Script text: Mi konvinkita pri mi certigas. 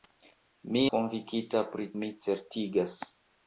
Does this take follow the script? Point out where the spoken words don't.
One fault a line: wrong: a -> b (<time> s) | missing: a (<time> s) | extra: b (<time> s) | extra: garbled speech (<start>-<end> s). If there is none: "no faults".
no faults